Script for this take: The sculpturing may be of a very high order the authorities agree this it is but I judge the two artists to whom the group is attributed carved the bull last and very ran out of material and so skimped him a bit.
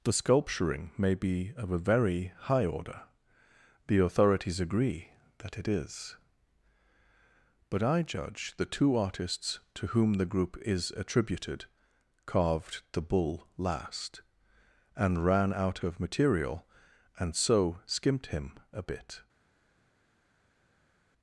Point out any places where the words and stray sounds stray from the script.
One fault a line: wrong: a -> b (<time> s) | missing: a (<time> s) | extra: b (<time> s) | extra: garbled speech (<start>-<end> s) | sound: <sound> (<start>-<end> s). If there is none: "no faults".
wrong: this -> that (5.4 s)
missing: very (15.2 s)